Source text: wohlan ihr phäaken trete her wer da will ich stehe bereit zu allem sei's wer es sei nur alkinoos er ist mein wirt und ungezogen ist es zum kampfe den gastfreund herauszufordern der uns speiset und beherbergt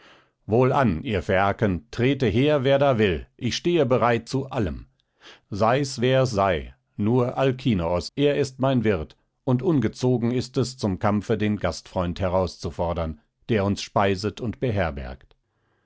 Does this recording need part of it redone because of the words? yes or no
no